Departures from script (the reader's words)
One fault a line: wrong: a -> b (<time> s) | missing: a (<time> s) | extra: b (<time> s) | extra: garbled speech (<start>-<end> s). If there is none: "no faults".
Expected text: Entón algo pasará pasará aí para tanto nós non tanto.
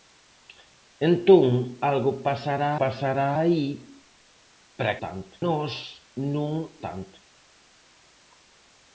no faults